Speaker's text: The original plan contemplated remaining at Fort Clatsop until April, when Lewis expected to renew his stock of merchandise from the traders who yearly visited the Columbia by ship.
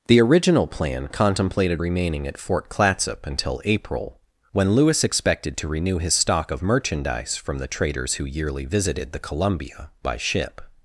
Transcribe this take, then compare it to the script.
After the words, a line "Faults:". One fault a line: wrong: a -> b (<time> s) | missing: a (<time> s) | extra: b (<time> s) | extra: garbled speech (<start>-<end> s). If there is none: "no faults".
The original plan contemplated remaining at Fort Clatsop until April, when Lewis expected to renew his stock of merchandise from the traders who yearly visited the Columbia by ship.
Faults:
no faults